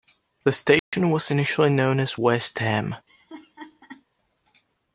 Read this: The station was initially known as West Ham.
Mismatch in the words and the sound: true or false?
true